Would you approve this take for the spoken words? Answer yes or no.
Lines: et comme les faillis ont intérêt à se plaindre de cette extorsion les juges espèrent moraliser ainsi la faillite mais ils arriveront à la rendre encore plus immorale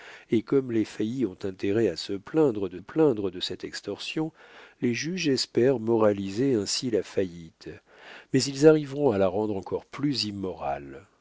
no